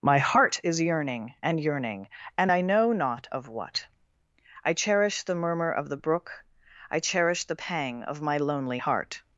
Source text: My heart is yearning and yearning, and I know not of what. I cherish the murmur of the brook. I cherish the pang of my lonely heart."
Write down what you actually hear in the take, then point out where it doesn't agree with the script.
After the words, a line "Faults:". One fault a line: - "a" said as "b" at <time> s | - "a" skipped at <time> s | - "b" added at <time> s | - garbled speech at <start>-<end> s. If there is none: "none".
My heart is yearning and yearning, and I know not of what. I cherish the murmur of the brook. I cherish the pang of my lonely heart."
Faults:
none